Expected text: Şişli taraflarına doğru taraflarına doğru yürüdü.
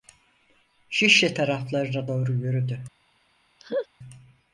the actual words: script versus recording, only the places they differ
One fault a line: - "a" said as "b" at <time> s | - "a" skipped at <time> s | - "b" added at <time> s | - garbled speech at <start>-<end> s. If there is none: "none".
- "taraflarına doğru" skipped at 2.3 s